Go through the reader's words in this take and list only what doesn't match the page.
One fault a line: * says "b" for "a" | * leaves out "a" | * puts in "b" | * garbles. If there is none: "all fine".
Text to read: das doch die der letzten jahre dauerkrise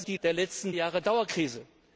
all fine